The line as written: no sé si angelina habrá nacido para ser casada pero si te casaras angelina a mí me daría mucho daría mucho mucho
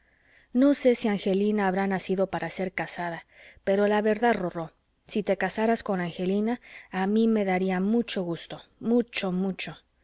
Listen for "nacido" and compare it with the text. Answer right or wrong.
right